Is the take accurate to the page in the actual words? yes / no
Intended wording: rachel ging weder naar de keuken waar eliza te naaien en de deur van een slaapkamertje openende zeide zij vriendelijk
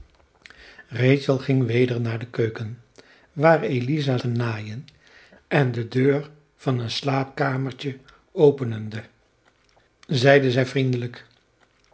yes